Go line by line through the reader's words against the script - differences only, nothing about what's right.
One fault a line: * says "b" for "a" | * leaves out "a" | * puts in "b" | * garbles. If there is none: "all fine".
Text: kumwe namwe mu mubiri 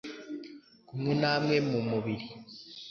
all fine